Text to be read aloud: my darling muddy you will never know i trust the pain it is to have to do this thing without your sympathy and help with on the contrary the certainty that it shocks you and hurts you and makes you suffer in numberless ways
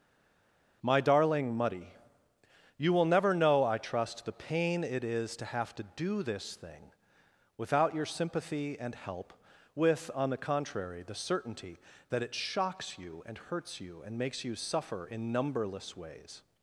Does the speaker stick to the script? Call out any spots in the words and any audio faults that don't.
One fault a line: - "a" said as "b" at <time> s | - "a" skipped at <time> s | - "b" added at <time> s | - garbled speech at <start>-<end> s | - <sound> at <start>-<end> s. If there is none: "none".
none